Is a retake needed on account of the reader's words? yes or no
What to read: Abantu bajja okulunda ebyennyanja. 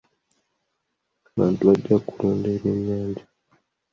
no